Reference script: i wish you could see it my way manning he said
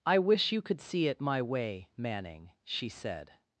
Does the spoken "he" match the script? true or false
false